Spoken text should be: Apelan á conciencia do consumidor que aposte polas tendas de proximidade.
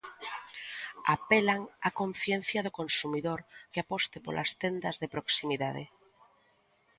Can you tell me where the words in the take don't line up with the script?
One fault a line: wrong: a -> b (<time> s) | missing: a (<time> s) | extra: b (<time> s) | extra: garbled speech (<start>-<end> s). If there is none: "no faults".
no faults